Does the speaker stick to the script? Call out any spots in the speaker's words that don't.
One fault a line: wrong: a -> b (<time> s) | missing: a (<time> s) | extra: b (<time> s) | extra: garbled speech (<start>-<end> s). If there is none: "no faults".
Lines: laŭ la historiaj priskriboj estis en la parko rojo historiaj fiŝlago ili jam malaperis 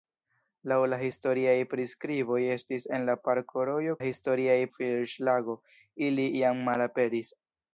no faults